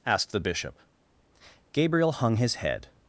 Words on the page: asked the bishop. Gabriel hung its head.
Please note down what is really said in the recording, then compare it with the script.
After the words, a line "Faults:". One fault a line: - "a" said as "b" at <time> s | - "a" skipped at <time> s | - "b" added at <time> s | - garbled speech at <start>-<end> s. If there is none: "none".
asked the bishop. Gabriel hung his head.
Faults:
- "its" said as "his" at 2.4 s